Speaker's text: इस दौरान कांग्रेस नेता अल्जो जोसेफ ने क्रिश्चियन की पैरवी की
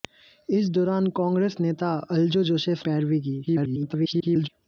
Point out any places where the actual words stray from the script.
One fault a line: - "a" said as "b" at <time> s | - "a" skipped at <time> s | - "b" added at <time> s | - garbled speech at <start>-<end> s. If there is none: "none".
- "ने क्रिश्चियन की" skipped at 2.8 s
- garbled speech at 3.5-4.5 s